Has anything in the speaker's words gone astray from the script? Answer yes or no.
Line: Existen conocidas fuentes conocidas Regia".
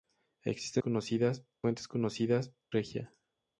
no